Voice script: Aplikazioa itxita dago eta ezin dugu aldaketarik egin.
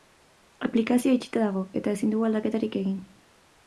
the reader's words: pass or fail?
pass